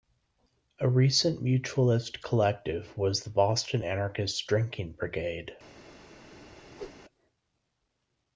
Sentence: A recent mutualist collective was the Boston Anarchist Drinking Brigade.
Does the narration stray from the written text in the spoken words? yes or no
no